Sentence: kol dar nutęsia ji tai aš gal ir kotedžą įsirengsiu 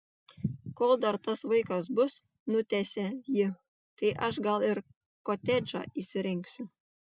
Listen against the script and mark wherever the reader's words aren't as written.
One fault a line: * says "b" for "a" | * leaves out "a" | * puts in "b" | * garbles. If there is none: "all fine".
* puts in "tas vaikas bus"